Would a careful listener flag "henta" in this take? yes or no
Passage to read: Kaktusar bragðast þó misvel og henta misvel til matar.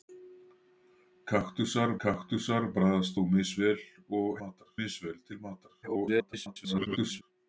yes